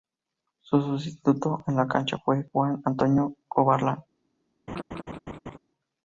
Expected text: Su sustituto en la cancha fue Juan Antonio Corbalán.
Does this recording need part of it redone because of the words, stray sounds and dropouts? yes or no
yes